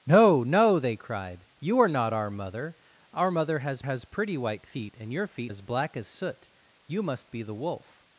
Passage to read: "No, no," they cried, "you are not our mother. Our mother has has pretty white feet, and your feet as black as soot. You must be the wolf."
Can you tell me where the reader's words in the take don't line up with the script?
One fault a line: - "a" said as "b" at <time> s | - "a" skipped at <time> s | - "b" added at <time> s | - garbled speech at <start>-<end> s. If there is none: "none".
none